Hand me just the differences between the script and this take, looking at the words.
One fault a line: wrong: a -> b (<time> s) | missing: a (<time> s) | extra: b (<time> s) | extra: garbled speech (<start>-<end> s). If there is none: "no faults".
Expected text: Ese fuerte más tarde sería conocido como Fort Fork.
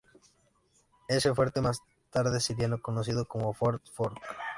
no faults